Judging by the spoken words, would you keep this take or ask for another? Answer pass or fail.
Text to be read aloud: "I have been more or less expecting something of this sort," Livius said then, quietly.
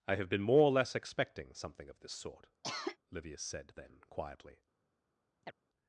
pass